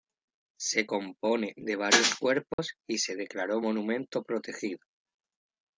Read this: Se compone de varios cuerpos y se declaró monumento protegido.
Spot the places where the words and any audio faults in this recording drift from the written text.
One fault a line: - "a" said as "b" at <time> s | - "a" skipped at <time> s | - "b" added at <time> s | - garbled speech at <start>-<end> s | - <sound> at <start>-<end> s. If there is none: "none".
- dropout at 2.5-2.6 s